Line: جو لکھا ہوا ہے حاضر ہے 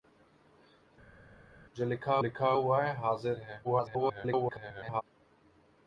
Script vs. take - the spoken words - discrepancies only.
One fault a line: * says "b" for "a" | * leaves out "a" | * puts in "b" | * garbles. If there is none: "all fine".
* puts in "لکھا"
* garbles